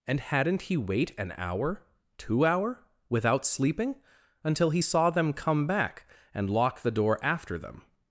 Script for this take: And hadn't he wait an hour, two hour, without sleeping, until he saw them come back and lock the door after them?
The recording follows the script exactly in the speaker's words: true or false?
true